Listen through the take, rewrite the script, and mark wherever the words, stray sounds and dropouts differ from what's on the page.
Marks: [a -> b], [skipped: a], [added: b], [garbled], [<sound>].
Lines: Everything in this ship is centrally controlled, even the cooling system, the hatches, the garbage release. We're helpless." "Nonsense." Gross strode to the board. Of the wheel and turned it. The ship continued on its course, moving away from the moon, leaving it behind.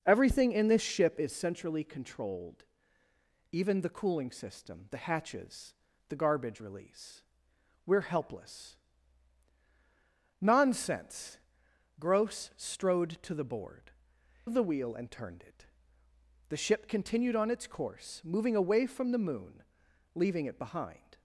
Everything in this ship is centrally controlled, even the cooling system, the hatches, the garbage release. We're helpless." "Nonsense." Gross strode to the board. Of the wheel and turned it. The ship continued on its course, moving away from the moon, leaving it behind.